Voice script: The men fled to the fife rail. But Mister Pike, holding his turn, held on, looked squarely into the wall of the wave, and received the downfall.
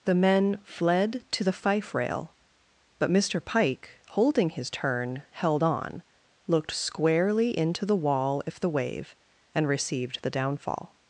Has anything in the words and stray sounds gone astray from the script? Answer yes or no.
yes